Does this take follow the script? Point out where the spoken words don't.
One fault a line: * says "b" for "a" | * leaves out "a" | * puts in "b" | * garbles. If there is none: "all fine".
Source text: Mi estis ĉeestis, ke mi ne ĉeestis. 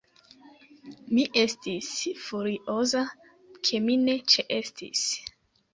* says "furioza" for "ĉeestis"